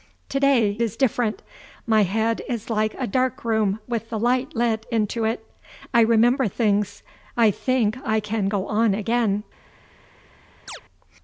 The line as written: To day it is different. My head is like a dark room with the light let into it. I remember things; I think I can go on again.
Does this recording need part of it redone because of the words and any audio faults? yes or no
yes